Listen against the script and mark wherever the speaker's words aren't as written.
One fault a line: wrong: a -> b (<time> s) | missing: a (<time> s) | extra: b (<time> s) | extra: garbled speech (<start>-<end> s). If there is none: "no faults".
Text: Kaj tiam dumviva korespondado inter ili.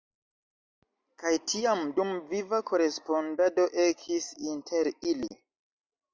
extra: ekis (3.9 s)